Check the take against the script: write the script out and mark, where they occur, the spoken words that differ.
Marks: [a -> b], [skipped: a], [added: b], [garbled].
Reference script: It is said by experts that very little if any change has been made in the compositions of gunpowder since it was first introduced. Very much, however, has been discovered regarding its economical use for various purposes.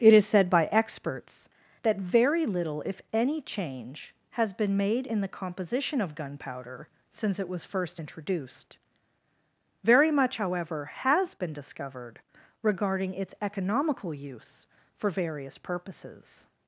It is said by experts that very little if any change has been made in the [compositions -> composition] of gunpowder since it was first introduced. Very much, however, has been discovered regarding its economical use for various purposes.